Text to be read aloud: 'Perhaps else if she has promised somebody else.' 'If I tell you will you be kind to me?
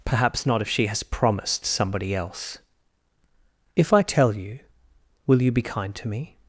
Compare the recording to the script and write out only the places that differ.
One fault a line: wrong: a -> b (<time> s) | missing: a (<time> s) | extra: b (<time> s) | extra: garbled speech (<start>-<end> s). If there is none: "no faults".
wrong: else -> not (0.5 s)